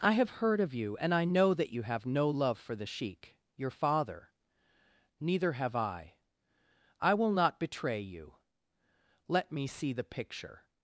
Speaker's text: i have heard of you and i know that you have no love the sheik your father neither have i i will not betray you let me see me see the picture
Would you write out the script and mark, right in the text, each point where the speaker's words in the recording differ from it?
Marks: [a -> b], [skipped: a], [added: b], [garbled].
i have heard of you and i know that you have no love [added: for] the sheik your father neither have i i will not betray you let me see [skipped: me see] the picture